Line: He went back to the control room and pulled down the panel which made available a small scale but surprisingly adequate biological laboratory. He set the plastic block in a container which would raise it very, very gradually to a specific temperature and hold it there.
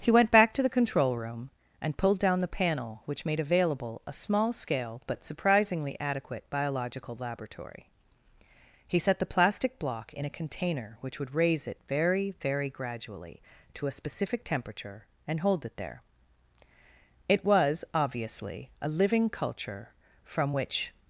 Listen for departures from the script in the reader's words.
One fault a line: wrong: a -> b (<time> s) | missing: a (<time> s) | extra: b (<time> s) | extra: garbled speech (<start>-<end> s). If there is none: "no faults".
extra: It was obviously a living culture from which (17.3 s)